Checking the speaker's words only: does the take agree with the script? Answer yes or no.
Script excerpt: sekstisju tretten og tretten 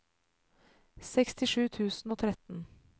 no